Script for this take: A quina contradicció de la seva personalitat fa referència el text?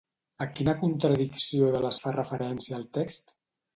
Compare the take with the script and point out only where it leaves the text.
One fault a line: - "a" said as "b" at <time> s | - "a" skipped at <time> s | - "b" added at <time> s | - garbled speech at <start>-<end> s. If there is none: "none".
- "seva personalitat" skipped at 1.9 s